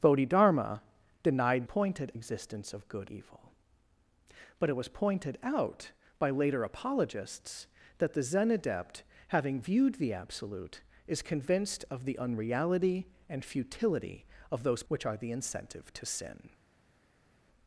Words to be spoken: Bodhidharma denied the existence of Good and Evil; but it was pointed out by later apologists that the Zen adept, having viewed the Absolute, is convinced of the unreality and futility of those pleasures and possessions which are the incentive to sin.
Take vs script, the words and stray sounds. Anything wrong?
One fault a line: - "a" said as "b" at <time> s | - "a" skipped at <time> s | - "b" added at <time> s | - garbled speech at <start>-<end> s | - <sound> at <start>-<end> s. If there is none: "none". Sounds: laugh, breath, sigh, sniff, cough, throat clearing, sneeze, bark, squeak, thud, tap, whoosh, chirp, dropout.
- "the" said as "pointed" at 1.6 s
- "and" skipped at 3.1 s
- "pleasures and possessions" skipped at 14.8 s